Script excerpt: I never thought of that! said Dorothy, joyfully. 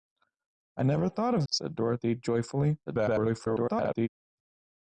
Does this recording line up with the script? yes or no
no